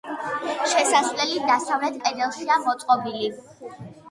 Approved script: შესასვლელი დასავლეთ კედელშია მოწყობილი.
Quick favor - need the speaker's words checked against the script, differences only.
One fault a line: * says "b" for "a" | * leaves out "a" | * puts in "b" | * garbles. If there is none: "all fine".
all fine